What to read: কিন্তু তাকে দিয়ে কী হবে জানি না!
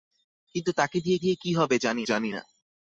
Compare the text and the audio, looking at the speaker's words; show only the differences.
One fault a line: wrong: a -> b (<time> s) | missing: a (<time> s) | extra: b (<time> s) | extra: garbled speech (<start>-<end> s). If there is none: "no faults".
extra: দিয়ে (1.2 s)
extra: জানি (2.0 s)